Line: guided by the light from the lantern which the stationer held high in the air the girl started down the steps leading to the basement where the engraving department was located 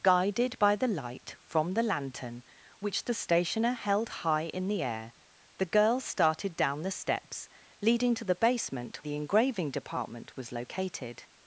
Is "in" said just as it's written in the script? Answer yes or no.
yes